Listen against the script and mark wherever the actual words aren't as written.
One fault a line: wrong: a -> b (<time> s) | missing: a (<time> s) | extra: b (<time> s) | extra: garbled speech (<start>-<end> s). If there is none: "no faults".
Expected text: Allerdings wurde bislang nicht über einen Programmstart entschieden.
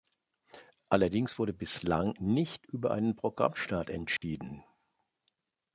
no faults